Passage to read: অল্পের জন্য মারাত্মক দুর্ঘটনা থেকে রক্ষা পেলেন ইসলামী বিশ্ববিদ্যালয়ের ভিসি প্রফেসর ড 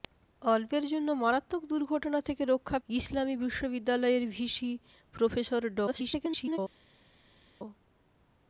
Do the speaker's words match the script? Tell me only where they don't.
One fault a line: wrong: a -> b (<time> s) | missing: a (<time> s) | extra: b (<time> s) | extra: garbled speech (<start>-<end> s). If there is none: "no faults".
missing: পেলেন (2.8 s)
extra: garbled speech (5.9-6.6 s)